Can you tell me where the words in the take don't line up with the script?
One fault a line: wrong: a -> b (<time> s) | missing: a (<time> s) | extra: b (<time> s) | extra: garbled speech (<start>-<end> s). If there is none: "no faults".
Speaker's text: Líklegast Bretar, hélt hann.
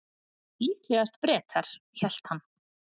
no faults